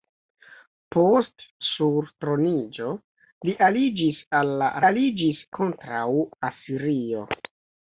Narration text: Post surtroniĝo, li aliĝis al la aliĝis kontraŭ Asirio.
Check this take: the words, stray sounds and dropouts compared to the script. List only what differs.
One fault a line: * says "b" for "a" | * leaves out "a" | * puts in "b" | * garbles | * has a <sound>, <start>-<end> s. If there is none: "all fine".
all fine